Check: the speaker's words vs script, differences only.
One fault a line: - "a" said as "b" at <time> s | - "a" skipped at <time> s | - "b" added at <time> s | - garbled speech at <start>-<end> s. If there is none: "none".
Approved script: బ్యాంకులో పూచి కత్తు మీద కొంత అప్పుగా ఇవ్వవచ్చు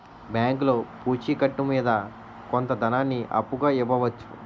- "ధనాన్ని" added at 2.8 s